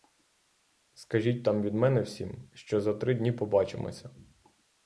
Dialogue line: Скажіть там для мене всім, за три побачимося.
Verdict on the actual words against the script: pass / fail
fail